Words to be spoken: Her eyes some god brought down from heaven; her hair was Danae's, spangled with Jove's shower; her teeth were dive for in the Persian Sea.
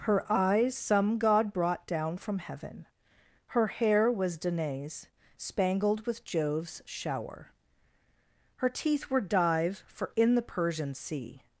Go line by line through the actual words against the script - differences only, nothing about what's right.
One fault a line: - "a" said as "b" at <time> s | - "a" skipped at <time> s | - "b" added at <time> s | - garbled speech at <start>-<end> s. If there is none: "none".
none